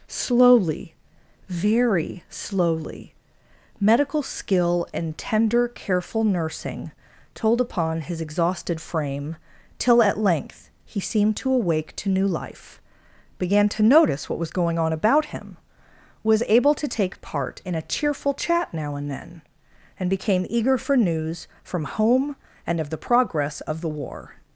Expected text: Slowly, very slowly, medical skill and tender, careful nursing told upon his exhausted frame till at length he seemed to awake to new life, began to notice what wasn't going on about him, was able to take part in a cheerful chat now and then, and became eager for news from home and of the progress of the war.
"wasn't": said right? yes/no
no